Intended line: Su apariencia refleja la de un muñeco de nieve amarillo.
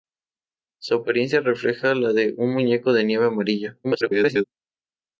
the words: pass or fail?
fail